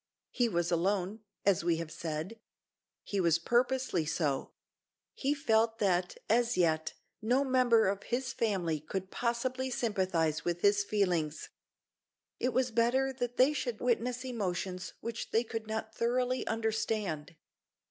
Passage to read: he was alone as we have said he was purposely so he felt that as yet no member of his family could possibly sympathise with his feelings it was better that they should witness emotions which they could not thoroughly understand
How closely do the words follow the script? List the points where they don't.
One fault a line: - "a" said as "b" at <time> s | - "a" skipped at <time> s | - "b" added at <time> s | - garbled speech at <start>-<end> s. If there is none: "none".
none